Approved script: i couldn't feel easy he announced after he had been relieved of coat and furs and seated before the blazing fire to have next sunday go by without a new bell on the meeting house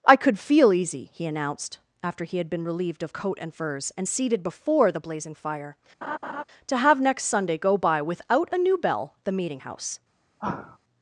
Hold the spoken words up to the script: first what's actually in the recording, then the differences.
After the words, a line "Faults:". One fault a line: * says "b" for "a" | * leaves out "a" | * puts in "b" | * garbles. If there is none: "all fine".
i could feel easy he announced after he had been relieved of coat and furs and seated before the blazing fire to have next sunday go by without a new bell the meeting house
Faults:
* says "could" for "couldn't"
* leaves out "on"